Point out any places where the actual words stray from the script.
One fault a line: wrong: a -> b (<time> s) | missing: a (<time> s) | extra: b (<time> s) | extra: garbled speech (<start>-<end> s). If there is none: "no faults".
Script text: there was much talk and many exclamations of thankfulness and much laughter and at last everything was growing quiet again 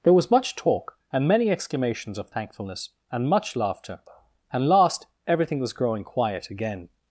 missing: at (4.7 s)